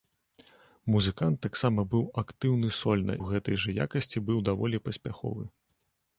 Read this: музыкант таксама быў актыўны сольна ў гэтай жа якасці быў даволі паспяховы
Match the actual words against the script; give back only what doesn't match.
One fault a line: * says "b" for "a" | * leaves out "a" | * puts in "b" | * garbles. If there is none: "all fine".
all fine